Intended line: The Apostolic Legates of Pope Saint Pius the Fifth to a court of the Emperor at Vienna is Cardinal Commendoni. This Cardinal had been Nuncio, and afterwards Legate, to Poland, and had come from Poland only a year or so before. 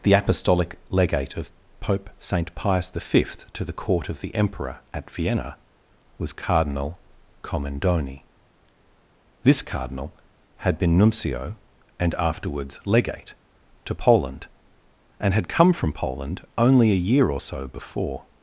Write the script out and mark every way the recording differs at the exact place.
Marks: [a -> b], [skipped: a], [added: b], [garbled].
The Apostolic [Legates -> Legate] of Pope Saint Pius the Fifth to [a -> the] court of the Emperor at Vienna [is -> was] Cardinal Commendoni. This Cardinal had been Nuncio, and afterwards Legate, to Poland, and had come from Poland only a year or so before.